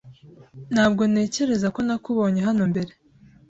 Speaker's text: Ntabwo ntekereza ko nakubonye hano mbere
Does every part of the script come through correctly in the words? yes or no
yes